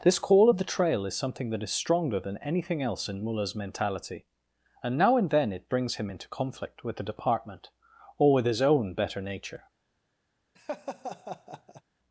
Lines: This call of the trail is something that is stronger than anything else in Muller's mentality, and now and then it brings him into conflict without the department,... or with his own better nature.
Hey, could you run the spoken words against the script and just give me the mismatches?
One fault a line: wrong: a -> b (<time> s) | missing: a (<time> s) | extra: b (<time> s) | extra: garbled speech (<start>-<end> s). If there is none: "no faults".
wrong: without -> with (6.8 s)